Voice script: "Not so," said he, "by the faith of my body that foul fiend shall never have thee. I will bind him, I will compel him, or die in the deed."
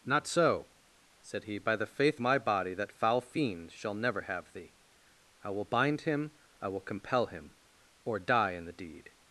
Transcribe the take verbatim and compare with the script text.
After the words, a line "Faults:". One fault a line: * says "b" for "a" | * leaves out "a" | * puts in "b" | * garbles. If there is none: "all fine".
"Not so," said he, "by the faith my body that foul fiend shall never have thee. I will bind him, I will compel him, or die in the deed."
Faults:
* leaves out "of"